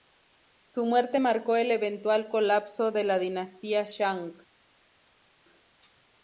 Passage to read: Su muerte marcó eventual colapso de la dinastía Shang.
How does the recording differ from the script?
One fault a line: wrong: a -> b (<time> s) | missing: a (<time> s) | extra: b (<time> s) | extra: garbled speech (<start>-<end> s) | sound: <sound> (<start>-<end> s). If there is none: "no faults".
extra: el (1.6 s)